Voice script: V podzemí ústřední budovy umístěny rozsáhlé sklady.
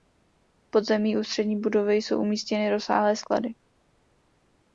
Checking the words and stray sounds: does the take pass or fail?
fail